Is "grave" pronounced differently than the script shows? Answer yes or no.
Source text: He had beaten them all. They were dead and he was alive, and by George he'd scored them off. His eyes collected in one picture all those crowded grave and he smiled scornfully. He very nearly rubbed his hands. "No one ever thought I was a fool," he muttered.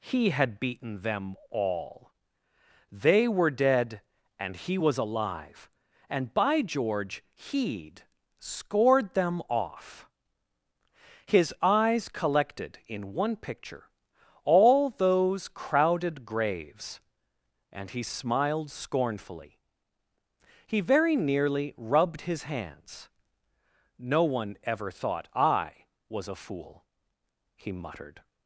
yes